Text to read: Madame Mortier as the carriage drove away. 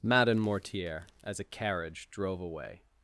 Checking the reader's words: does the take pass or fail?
fail